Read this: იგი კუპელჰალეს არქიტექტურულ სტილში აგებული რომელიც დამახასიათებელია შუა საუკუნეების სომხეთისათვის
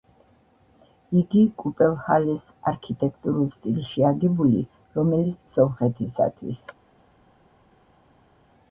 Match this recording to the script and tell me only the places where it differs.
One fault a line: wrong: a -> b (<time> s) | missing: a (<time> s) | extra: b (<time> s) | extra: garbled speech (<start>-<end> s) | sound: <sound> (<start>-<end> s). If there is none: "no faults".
missing: დამახასიათებელია შუა საუკუნეების (5.4 s)